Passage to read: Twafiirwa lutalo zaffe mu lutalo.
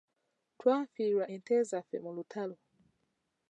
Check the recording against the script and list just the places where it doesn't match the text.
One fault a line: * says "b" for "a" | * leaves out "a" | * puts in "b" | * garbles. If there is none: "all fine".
* says "ente" for "lutalo"